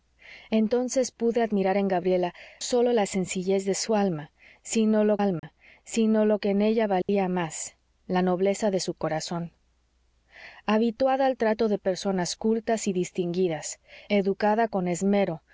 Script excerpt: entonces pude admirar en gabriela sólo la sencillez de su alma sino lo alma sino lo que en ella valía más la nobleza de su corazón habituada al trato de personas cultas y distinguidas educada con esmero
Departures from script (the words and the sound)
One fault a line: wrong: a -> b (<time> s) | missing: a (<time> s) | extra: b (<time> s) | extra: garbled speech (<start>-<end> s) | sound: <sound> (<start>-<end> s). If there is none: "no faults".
sound: dropout (5.4-5.4 s)
sound: dropout (7.0-7.1 s)